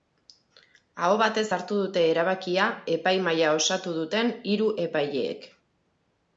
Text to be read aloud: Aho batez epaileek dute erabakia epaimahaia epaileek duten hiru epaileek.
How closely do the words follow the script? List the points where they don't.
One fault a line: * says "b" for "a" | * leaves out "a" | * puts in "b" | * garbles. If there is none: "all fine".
* says "hartu" for "epaileek"
* says "osatu" for "epaileek"